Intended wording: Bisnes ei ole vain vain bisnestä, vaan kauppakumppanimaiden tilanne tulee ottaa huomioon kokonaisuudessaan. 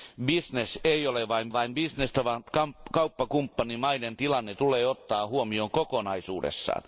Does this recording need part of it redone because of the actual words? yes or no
no